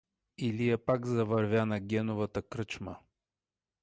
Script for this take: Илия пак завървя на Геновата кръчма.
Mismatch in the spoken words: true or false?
false